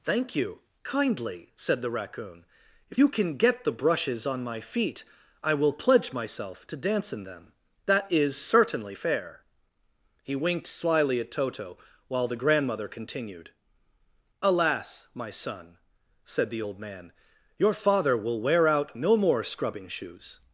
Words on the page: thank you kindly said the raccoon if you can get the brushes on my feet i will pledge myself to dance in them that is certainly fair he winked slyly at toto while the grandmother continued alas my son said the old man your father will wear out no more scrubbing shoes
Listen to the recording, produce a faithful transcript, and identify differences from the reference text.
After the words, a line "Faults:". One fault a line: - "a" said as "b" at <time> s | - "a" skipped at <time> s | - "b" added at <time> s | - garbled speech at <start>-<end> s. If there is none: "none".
thank you kindly said the raccoon if you can get the brushes on my feet i will pledge myself to dance in them that is certainly fair he winked slyly at toto while the grandmother continued alas my son said the old man your father will wear out no more scrubbing shoes
Faults:
none